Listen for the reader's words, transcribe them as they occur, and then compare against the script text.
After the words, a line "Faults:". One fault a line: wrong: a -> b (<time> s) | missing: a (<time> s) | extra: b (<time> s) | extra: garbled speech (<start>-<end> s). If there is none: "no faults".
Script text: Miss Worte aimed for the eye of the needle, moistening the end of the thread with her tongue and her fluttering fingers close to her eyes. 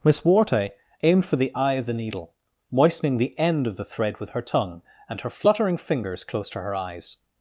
Miss Worte aimed for the eye of the needle, moistening the end of the thread with her tongue and her fluttering fingers close to her eyes.
Faults:
no faults